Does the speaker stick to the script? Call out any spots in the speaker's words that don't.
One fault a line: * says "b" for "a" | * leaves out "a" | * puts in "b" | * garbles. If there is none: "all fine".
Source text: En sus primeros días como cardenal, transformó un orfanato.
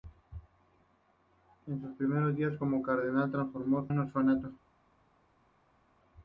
all fine